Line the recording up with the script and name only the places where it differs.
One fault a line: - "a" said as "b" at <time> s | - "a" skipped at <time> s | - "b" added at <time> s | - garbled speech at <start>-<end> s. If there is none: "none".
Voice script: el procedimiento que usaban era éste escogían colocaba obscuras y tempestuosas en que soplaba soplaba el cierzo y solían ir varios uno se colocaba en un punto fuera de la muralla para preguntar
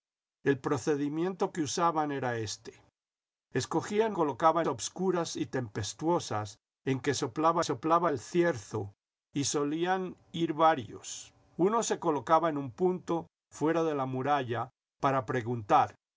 none